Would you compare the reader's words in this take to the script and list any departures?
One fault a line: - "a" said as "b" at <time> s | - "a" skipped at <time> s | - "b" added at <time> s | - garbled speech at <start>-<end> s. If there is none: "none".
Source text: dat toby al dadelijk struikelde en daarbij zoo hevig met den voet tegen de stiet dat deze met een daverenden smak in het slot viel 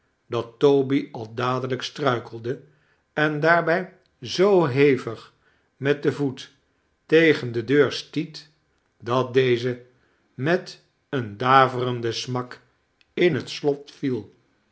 - "deur" added at 7.6 s